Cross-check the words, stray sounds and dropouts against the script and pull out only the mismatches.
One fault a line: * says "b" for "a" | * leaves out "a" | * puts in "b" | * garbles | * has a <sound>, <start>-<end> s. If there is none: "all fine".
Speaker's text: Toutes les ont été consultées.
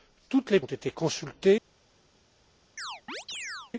* has a chirp, 2.8-3.7 s